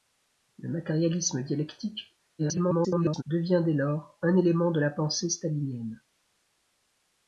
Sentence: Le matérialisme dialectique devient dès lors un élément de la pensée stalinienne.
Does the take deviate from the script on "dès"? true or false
false